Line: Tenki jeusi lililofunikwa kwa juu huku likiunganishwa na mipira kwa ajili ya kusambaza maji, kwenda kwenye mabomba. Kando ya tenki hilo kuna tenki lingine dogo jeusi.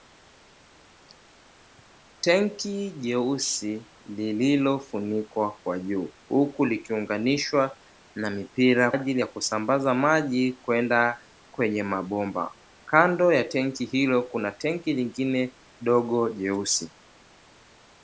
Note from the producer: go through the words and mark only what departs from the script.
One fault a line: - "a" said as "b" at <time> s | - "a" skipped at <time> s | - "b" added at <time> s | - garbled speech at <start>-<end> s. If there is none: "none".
- "kwa" skipped at 8.9 s